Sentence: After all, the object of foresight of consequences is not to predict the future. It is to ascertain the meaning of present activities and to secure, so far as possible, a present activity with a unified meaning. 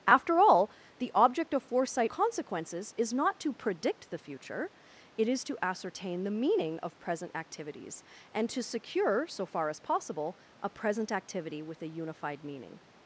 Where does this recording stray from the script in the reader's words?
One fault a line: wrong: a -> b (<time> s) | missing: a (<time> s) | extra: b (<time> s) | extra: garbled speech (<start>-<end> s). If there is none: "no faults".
missing: of (2.1 s)